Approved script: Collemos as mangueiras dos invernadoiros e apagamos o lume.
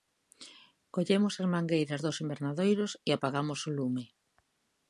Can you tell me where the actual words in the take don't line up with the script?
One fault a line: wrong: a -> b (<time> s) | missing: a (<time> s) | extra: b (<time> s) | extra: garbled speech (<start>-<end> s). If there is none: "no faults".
no faults